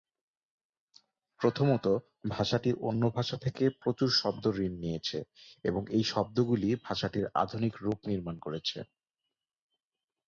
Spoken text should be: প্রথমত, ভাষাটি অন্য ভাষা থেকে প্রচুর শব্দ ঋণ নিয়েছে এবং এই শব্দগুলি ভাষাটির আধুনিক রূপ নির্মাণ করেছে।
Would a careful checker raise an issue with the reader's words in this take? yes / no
no